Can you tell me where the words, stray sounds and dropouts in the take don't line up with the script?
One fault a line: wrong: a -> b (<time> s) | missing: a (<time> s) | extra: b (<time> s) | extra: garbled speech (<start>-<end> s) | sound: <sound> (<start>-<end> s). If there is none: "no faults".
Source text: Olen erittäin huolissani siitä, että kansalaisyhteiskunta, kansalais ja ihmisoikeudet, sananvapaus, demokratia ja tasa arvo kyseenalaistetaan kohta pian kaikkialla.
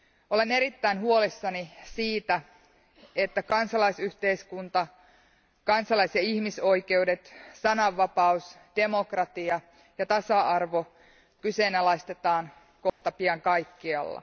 sound: dropout (12.9-13.0 s)